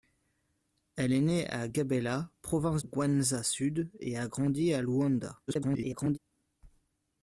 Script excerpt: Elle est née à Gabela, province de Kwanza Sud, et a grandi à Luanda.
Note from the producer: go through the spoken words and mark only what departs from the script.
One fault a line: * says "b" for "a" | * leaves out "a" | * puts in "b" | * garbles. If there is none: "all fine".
* leaves out "de"
* garbles